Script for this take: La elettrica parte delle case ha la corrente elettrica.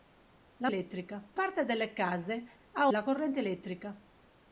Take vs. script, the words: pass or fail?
pass